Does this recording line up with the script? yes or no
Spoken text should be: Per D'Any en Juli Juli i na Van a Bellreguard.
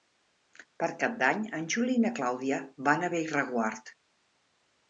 no